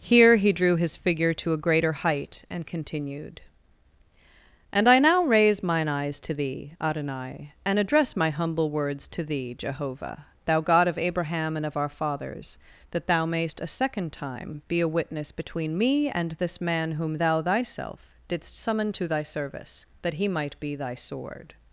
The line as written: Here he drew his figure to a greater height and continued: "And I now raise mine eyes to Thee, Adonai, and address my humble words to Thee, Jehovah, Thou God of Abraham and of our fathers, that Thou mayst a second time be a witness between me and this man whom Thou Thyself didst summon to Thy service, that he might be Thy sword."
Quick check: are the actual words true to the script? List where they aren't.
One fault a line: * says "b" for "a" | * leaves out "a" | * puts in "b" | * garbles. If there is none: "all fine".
all fine